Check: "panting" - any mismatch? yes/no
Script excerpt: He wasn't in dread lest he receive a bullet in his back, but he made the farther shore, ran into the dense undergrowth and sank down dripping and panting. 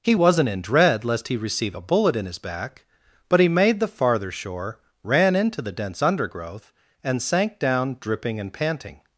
no